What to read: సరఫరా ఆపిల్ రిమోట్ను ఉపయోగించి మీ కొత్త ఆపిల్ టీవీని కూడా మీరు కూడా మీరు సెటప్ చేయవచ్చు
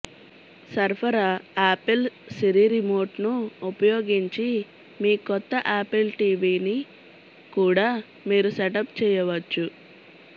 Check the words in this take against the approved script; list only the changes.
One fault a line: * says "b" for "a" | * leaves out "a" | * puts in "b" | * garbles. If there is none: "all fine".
* puts in "సిరి"
* leaves out "కూడా మీరు"